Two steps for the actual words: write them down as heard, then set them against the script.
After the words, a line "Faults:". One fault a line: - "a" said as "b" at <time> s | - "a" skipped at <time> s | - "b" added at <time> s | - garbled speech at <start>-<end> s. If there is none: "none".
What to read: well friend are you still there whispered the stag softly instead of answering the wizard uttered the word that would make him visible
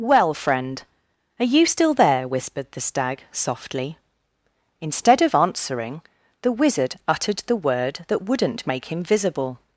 well friend are you still there whispered the stag softly instead of answering the wizard uttered the word that wouldn't make him visible
Faults:
- "would" said as "wouldn't" at 8.2 s